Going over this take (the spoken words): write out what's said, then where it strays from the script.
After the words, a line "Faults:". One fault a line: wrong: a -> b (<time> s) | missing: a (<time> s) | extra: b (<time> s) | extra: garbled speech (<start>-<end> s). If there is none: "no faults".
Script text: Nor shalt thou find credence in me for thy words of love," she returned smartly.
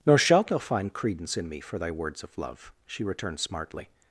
Nor shalt thou find credence in me for thy words of love," she returned smartly.
Faults:
no faults